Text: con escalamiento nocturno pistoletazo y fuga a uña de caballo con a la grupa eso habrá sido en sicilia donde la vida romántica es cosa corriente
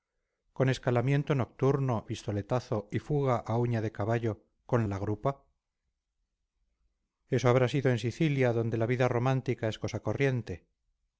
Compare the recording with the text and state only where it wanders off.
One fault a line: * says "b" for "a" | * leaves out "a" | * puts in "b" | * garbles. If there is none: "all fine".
all fine